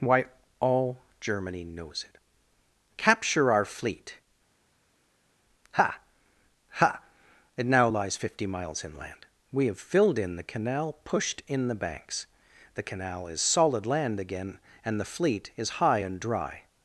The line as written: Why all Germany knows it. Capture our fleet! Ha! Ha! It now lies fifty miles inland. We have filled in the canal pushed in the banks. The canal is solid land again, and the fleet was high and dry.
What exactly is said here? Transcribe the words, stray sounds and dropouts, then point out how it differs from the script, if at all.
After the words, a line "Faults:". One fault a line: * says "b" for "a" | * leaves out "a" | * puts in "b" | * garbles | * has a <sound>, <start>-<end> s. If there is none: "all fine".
Why all Germany knows it. Capture our fleet! Ha! Ha! It now lies fifty miles inland. We have filled in the canal pushed in the banks. The canal is solid land again, and the fleet is high and dry.
Faults:
* says "is" for "was"